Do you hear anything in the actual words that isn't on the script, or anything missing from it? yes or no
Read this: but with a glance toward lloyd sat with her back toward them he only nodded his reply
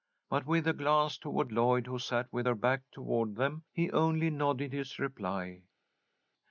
yes